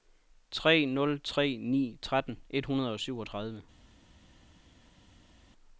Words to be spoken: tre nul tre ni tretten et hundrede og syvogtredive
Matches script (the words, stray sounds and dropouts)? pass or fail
pass